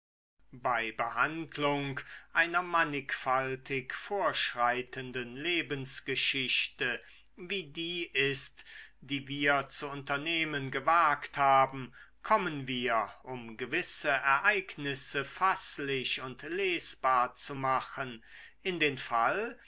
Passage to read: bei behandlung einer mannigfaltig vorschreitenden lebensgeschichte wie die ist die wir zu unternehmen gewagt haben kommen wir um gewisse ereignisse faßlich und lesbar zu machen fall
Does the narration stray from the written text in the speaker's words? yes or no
yes